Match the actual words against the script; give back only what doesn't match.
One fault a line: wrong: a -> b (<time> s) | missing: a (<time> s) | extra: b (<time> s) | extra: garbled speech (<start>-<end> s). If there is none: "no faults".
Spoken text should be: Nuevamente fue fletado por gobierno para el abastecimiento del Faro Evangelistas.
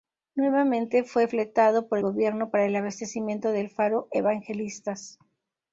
no faults